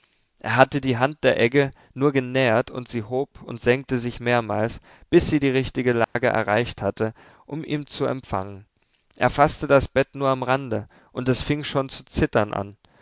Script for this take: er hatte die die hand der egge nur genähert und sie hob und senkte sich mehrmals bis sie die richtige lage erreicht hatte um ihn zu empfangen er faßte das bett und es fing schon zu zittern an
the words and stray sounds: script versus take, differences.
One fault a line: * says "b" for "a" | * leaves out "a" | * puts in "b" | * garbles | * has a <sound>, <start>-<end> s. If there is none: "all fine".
* leaves out "die"
* has a dropout, 6.0-6.2 s
* puts in "nur am rande"